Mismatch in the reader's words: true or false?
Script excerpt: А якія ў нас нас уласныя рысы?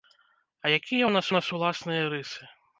false